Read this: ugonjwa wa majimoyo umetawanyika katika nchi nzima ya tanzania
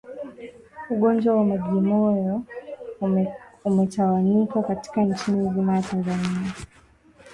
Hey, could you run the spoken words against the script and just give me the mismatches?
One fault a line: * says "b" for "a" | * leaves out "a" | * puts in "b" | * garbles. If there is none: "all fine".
all fine